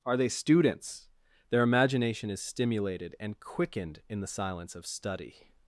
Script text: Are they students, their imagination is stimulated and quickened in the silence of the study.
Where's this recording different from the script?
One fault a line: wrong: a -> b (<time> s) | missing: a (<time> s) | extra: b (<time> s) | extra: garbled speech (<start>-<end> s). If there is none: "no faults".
missing: the (4.9 s)